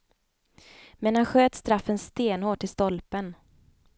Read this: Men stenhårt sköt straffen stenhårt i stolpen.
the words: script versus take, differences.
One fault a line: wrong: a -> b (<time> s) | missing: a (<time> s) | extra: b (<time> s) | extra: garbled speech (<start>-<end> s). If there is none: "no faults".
wrong: stenhårt -> han (1.1 s)